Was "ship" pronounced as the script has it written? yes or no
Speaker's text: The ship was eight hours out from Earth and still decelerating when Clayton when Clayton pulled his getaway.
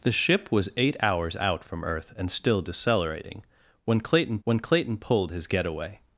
yes